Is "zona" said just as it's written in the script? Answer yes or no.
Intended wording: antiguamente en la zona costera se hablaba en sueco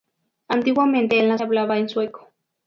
no